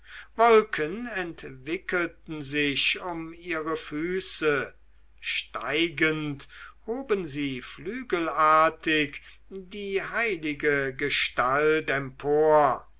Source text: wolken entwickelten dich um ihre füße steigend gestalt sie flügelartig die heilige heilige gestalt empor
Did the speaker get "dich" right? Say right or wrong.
wrong